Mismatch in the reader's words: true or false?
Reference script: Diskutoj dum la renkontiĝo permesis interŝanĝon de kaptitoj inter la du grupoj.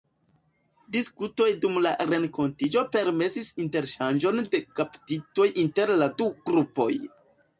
false